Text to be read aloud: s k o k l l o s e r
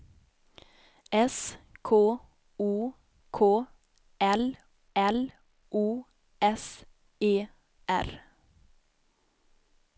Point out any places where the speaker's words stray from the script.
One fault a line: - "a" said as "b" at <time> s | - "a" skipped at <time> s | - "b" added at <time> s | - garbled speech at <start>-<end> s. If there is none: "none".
none